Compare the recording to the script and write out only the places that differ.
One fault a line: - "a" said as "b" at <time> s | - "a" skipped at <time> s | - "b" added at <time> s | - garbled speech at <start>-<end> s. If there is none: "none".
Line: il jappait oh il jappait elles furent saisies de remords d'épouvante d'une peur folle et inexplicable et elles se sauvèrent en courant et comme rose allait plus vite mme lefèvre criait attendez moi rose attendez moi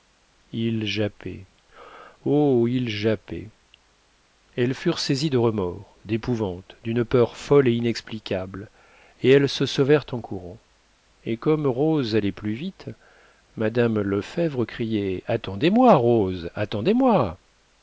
none